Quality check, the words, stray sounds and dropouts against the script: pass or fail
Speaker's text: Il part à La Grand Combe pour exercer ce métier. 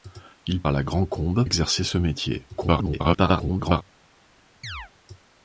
fail